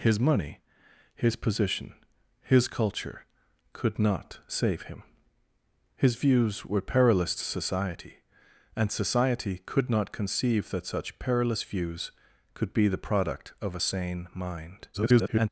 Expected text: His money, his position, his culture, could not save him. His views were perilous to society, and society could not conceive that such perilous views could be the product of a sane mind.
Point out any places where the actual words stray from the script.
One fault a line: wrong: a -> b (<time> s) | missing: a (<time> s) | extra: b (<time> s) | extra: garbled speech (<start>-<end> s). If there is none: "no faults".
extra: garbled speech (14.9-15.5 s)